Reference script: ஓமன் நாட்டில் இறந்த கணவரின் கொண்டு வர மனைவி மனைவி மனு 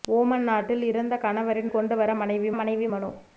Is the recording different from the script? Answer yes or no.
no